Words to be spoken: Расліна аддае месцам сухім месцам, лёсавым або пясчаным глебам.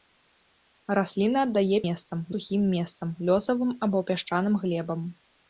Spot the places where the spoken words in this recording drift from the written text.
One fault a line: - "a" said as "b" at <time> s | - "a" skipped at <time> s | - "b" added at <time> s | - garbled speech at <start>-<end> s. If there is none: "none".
none